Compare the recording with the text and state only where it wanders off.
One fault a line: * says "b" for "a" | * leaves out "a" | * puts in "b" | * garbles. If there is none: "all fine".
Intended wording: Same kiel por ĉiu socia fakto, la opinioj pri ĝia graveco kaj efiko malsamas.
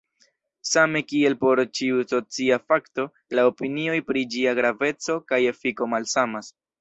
all fine